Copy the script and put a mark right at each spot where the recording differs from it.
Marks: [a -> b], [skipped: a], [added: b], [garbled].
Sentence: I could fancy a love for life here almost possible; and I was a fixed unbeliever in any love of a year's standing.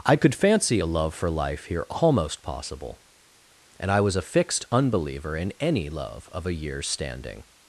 I could fancy a love for life here almost possible; and I was a fixed unbeliever in any love of a year's standing.